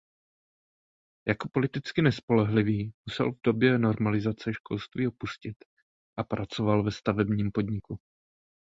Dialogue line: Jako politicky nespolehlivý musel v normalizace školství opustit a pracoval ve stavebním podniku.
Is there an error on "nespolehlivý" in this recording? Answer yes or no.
no